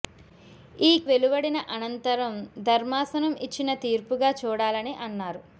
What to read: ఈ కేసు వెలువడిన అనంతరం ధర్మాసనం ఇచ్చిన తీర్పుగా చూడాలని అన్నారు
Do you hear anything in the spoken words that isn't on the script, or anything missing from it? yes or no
yes